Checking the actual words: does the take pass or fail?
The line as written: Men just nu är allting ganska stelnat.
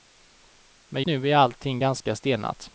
fail